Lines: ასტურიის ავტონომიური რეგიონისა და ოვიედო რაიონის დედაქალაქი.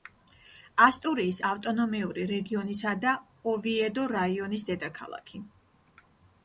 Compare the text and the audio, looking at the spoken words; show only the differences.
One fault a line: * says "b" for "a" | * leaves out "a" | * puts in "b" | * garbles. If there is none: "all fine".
all fine